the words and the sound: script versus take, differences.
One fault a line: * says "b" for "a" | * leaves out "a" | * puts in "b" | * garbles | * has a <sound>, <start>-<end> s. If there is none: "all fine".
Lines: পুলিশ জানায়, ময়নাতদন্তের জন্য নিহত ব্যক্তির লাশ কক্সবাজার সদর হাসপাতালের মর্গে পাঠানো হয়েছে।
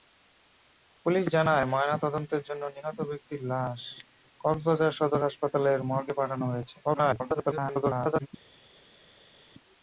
* garbles